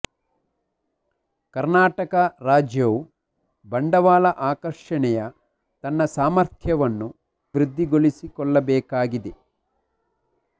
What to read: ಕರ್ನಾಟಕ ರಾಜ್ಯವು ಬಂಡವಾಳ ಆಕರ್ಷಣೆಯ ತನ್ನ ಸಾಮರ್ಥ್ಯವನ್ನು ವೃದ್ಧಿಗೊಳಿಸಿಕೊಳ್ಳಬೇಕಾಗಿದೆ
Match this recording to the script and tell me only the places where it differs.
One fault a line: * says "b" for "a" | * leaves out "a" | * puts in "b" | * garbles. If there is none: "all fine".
all fine